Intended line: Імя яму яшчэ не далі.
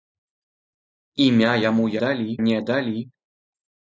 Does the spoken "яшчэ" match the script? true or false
false